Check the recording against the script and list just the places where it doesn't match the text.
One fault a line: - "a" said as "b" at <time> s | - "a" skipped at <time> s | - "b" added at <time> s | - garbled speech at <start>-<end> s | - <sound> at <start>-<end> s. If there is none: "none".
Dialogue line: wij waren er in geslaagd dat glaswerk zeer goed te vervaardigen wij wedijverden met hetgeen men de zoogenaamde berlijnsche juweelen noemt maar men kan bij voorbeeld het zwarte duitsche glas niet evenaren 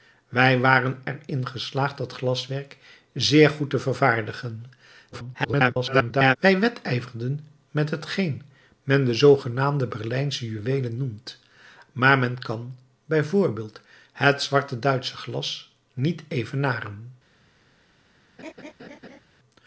- garbled speech at 5.1-6.4 s
- laugh at 18.4-19.2 s